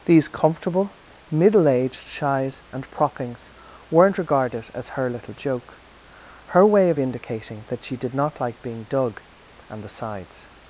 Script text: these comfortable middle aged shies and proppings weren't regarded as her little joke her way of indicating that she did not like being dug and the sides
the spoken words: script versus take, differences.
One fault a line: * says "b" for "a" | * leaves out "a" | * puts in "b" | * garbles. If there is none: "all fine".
all fine